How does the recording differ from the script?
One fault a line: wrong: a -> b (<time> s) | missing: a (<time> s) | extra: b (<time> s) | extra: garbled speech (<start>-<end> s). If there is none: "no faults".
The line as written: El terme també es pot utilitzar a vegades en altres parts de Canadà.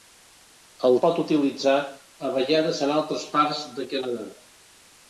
missing: terme també es (0.9 s)